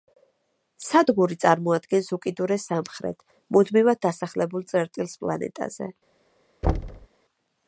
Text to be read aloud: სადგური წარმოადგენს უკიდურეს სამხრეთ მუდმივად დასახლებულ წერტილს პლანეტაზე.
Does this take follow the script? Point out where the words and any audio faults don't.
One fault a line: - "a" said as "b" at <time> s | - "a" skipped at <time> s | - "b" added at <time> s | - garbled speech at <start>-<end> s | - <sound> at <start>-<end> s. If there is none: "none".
- thud at 6.6-7.1 s